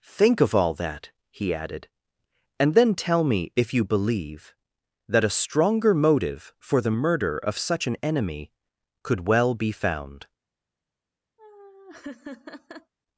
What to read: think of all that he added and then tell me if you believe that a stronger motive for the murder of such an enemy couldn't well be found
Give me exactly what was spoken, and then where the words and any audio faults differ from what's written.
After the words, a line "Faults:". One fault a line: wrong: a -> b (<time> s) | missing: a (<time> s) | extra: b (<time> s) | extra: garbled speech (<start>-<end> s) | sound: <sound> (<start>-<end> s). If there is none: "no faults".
think of all that he added and then tell me if you believe that a stronger motive for the murder of such an enemy could well be found
Faults:
wrong: couldn't -> could (9.0 s)
sound: laugh (11.4-12.9 s)